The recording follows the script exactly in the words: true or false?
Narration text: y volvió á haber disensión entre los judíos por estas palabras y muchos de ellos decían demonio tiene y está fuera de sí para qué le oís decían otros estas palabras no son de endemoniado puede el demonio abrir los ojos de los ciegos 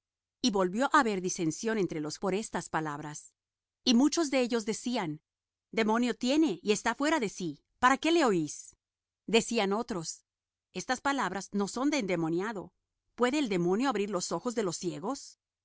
false